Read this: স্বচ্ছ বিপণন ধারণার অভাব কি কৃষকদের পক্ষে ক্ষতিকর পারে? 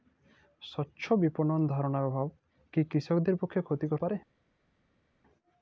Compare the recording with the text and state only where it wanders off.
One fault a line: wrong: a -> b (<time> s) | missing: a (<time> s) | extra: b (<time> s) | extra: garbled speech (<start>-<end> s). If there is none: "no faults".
no faults